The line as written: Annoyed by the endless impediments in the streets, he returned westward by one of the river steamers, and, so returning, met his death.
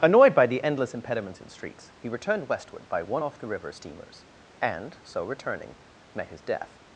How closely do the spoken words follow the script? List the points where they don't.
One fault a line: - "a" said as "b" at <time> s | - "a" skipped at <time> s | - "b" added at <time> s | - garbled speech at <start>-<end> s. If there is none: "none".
- "the" skipped at 1.5 s
- "of" said as "off" at 3.2 s